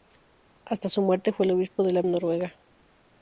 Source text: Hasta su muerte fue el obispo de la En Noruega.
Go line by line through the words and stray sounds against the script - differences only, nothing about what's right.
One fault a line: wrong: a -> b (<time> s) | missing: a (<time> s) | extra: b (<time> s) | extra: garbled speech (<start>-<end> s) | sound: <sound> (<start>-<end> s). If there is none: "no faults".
no faults